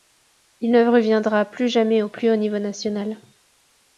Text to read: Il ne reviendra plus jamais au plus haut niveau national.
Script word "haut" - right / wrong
right